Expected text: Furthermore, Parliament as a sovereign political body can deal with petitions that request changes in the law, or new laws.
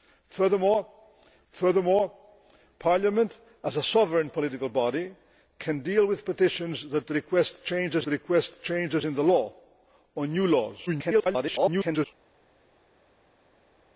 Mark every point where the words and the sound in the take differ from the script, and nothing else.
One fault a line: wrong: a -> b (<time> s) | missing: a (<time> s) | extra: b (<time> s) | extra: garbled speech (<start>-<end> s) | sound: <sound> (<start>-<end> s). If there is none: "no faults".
extra: furthermore (1.5 s)
extra: request changes (8.1 s)
extra: garbled speech (10.9-12.1 s)